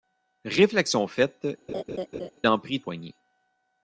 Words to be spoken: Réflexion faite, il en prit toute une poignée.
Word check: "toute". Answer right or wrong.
wrong